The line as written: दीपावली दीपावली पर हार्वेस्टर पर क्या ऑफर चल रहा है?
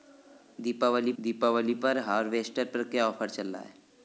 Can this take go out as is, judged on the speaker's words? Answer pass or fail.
pass